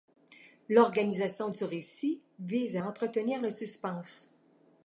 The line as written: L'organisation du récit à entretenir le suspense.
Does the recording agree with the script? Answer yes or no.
no